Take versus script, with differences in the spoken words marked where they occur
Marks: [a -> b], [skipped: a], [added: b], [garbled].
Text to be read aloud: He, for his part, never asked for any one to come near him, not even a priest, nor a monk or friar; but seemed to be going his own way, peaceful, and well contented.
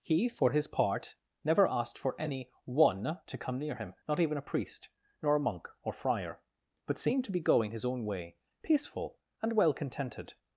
He, for his part, never asked for any one to come near him, not even a priest, nor a monk or friar; but seemed to be going his own way, peaceful, and well contented.